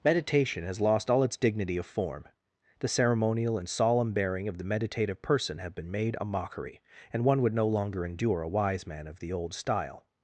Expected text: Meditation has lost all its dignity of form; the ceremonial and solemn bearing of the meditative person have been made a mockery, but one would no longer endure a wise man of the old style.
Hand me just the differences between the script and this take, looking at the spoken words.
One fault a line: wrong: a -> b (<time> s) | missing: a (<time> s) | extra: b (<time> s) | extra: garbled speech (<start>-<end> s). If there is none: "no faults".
wrong: but -> and (7.1 s)